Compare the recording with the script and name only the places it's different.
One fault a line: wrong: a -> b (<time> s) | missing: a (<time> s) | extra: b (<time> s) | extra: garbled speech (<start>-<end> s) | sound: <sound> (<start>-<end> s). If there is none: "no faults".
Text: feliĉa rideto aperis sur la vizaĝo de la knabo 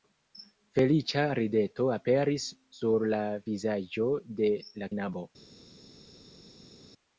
no faults